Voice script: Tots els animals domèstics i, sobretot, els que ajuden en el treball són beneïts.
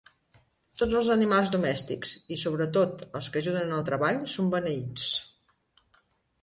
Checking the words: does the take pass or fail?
pass